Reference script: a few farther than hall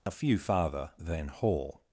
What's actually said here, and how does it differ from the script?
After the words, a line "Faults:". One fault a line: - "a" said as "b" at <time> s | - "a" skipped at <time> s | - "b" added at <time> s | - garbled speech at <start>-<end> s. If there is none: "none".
a few farther than hall
Faults:
none